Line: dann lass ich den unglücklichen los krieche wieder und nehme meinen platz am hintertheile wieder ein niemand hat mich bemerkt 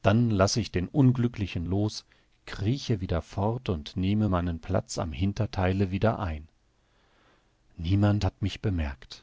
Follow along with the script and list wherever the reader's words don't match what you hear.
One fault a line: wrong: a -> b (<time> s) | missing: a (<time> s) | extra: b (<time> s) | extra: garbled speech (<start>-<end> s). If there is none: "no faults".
extra: fort (3.2 s)